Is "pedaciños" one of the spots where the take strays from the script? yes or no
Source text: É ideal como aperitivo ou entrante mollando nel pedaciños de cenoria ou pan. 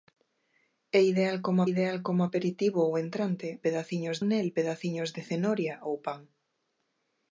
no